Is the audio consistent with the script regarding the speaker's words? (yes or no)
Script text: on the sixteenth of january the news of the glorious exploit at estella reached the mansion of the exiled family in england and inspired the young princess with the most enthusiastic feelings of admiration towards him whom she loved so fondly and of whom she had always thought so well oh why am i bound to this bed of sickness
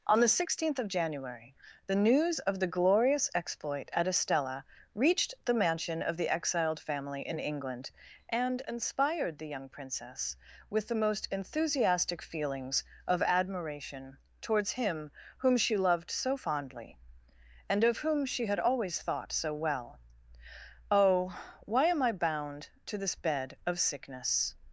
yes